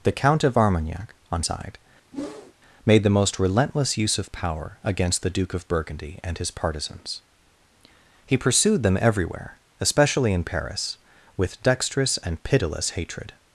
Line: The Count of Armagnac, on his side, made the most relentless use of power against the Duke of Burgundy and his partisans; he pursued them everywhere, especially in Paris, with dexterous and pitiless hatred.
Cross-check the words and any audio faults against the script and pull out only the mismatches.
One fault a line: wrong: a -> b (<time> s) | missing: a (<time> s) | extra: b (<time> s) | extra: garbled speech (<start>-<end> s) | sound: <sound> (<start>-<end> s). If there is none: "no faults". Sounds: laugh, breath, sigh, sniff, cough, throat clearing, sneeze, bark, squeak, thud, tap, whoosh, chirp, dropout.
missing: his (1.4 s)
sound: whoosh (2.1-2.5 s)